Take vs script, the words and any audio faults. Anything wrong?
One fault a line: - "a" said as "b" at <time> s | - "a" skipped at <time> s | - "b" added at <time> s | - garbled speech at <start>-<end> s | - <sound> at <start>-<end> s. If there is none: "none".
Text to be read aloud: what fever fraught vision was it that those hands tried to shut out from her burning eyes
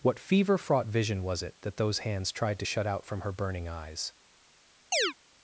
- chirp at 4.9-5.1 s